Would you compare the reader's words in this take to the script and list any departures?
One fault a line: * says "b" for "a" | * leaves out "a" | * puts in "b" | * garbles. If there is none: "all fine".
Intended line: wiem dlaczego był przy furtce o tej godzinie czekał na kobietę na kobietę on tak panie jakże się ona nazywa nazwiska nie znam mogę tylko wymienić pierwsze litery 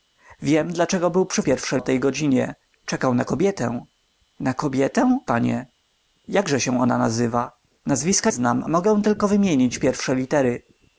* says "pierwsze" for "furtce"
* leaves out "on tak"
* leaves out "nie"